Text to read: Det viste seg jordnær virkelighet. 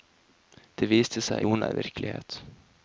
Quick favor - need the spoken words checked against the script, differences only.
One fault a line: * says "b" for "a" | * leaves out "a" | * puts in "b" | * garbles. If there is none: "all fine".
all fine